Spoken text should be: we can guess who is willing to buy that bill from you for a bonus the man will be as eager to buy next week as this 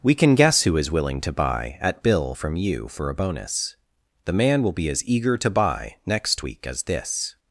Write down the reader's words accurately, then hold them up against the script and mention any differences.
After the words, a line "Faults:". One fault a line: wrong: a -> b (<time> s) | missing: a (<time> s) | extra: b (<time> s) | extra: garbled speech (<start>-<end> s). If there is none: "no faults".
we can guess who is willing to buy at bill from you for a bonus the man will be as eager to buy next week as this
Faults:
wrong: that -> at (1.8 s)